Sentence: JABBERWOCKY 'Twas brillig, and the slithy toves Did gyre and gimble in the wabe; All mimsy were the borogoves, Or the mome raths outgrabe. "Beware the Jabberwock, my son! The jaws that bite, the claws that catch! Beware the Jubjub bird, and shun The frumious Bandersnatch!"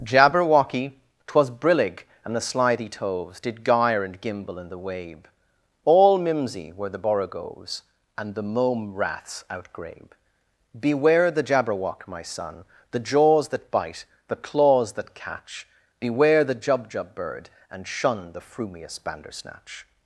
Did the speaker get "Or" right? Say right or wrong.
wrong